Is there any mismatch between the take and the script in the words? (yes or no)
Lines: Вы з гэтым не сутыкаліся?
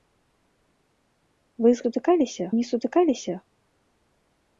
yes